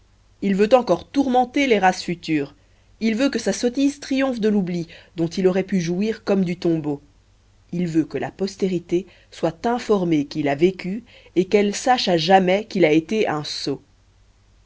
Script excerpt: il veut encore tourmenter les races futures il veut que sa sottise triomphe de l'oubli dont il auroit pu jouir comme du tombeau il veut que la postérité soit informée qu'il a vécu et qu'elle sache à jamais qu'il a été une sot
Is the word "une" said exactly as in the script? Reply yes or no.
no